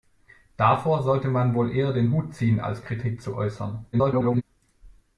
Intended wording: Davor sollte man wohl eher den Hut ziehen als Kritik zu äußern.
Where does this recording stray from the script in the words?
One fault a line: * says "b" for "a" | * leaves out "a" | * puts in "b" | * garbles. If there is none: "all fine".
* garbles